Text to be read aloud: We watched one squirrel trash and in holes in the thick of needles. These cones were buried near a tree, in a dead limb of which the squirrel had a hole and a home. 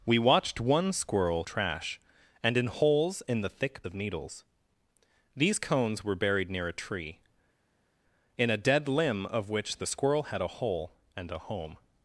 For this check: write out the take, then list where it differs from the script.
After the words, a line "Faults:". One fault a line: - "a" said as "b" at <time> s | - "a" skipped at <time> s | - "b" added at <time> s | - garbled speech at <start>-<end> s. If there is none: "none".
We watched one squirrel trash and in holes in the thick of needles. These cones were buried near a tree, in a dead limb of which the squirrel had a hole and a home.
Faults:
none